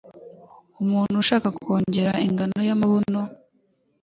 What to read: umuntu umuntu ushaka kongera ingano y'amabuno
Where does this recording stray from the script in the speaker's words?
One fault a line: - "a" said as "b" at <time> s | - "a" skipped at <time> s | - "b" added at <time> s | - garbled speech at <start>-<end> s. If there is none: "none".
- "umuntu" skipped at 1.1 s